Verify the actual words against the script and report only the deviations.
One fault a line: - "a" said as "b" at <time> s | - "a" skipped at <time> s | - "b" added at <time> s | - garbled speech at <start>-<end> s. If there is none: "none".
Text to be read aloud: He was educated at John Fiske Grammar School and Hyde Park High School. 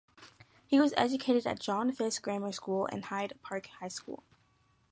none